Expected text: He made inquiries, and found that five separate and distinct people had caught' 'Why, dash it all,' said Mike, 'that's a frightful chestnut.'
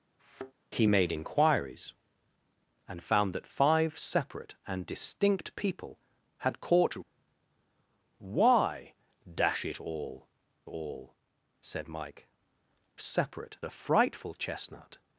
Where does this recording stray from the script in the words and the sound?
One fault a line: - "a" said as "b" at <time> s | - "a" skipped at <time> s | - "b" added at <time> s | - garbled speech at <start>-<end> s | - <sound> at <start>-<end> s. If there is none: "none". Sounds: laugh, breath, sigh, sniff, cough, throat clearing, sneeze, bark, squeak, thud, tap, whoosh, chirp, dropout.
- thud at 0.2-0.5 s
- "all" added at 10.7 s
- "that's" said as "separate" at 13.0 s